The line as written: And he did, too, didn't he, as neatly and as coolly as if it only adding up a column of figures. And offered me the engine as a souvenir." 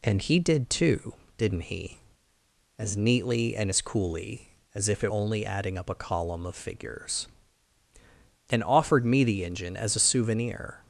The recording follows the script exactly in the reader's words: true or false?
true